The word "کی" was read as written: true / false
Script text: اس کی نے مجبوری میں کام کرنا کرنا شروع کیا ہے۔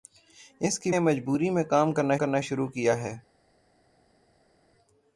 true